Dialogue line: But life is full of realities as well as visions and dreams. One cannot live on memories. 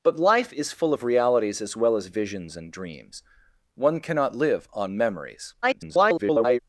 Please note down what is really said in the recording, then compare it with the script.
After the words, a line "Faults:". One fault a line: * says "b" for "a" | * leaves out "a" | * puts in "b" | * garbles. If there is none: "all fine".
But life is full of realities as well as visions and dreams. One cannot live on memories. [garbled]
Faults:
* garbles